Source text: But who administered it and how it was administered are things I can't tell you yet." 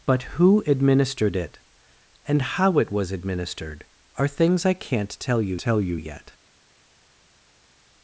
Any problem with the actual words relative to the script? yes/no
yes